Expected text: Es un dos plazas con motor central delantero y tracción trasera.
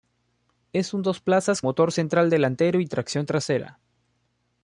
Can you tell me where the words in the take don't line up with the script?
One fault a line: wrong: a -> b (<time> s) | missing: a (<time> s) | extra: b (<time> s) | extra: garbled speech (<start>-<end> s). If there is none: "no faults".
missing: con (1.6 s)